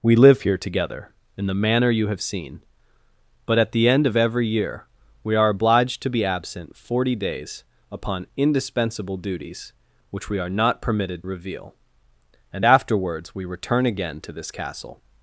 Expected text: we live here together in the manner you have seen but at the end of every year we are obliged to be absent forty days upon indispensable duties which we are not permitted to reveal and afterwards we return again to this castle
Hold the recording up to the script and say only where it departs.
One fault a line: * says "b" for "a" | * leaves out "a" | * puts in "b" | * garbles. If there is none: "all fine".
* leaves out "to"